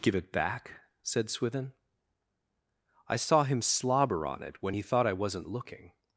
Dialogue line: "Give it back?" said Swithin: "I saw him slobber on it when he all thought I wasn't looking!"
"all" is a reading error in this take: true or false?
true